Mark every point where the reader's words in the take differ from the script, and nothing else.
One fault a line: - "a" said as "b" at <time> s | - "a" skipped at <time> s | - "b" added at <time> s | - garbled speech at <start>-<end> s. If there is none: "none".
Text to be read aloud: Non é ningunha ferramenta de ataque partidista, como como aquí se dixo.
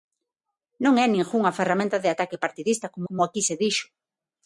none